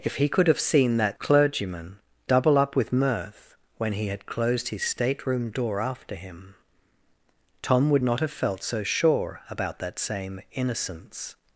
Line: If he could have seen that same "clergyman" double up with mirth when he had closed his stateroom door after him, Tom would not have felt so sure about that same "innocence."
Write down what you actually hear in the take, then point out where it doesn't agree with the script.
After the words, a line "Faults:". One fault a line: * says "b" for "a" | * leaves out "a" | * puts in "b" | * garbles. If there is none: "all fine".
If he could have seen that "clergyman" double up with mirth when he had closed his stateroom door after him, Tom would not have felt so sure about that same "innocence."
Faults:
* leaves out "same"